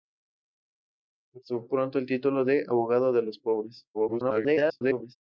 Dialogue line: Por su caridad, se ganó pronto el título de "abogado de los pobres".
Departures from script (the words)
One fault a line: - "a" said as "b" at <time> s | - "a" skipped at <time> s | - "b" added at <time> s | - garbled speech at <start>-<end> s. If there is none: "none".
- "caridad se ganó" skipped at 1.6 s
- garbled speech at 3.9-5.2 s